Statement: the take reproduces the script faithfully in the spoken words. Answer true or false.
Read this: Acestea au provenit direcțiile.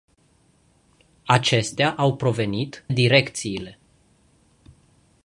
true